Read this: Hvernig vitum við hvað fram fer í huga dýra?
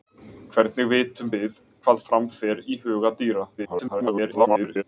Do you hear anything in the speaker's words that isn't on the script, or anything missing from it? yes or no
yes